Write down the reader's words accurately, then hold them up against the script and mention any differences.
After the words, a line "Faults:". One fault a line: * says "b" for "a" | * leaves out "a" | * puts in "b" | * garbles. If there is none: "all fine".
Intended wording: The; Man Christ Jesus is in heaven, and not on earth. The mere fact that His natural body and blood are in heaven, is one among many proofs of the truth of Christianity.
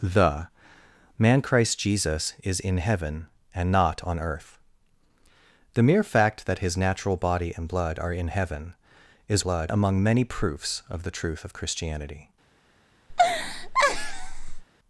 The; Man Christ Jesus is in heaven, and not on earth. The mere fact that His natural body and blood are in heaven, is blood among many proofs of the truth of Christianity.
Faults:
* says "blood" for "one"